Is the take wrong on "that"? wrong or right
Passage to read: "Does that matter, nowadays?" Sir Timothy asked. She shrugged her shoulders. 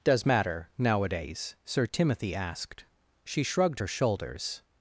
wrong